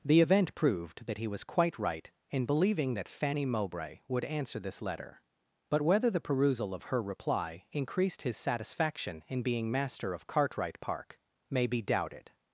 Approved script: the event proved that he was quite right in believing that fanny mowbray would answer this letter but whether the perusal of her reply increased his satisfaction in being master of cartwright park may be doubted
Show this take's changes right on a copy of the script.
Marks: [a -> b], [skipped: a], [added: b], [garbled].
the event proved that he was quite right in believing that fanny mowbray would answer this letter but whether the perusal of her reply increased his satisfaction in being master of cartwright park may be doubted